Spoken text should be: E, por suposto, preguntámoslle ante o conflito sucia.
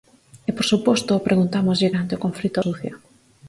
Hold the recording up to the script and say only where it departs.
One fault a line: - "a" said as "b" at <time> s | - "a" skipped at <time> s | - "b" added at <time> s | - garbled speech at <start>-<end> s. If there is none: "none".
none